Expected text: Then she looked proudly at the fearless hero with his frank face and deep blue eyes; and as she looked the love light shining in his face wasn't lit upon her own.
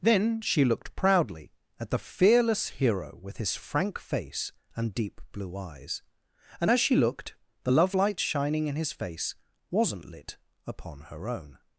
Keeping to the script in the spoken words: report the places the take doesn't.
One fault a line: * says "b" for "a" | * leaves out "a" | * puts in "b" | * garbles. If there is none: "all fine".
all fine